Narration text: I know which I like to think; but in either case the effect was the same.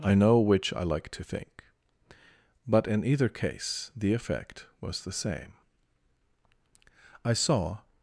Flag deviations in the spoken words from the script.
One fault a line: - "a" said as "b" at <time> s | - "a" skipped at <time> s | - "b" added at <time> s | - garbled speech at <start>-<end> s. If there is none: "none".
- "I saw" added at 7.2 s